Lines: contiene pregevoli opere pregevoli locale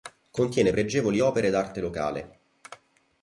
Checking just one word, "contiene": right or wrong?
right